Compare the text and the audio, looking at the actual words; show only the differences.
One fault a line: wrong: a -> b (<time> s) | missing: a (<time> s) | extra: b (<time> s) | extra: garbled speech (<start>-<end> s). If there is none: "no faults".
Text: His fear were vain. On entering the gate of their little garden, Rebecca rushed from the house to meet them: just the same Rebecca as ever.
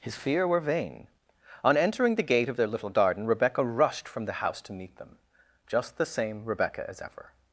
no faults